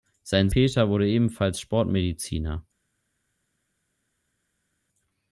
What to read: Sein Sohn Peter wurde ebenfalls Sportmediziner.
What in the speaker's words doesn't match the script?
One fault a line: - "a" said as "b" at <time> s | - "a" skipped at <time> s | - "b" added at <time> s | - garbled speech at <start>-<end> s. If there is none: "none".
- "Sohn" skipped at 0.5 s